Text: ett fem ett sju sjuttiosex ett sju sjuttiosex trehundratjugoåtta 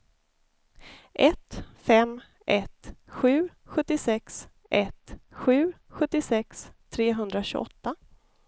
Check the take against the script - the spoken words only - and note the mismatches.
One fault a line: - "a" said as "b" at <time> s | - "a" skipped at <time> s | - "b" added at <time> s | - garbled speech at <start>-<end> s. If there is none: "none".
none